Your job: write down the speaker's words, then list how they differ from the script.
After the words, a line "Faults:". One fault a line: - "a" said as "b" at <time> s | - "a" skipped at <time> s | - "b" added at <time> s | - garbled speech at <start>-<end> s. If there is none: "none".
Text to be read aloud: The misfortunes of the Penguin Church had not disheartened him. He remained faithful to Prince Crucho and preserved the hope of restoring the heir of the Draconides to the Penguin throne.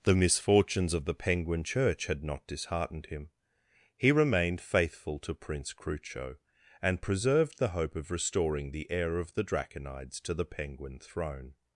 The misfortunes of the Penguin Church had not disheartened him. He remained faithful to Prince Crucho and preserved the hope of restoring the heir of the Draconides to the Penguin throne.
Faults:
none